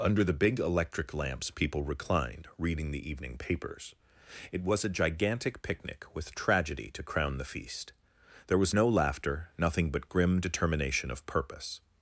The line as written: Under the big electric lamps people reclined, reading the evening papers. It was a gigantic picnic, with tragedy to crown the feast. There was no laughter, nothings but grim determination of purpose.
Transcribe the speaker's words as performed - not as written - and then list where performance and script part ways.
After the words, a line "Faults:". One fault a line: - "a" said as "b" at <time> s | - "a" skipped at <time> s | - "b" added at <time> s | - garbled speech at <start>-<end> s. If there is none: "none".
Under the big electric lamps people reclined, reading the evening papers. It was a gigantic picnic, with tragedy to crown the feast. There was no laughter, nothing but grim determination of purpose.
Faults:
- "nothings" said as "nothing" at 9.6 s